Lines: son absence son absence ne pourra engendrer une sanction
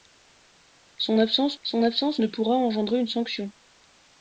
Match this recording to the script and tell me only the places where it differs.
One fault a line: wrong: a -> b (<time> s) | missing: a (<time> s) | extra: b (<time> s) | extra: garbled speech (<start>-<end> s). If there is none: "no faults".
no faults